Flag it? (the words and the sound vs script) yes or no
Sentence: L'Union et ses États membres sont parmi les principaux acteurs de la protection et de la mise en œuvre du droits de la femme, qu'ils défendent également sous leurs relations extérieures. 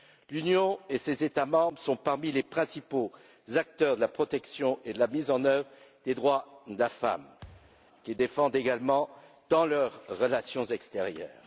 yes